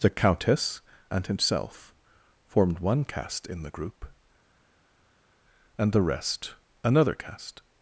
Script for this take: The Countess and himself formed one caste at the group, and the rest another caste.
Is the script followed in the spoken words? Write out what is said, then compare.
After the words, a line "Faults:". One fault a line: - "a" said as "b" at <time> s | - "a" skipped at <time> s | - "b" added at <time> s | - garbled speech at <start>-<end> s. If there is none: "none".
The Countess and himself formed one caste in the group, and the rest another caste.
Faults:
- "at" said as "in" at 3.5 s